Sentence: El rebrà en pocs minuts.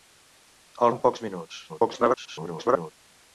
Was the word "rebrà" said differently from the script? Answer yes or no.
yes